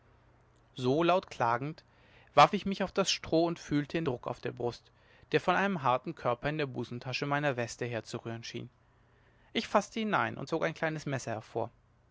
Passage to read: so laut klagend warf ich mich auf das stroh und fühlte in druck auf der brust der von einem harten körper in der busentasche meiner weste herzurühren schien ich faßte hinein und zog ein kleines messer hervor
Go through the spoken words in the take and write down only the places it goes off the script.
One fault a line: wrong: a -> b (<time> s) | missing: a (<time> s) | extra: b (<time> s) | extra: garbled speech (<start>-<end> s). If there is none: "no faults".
no faults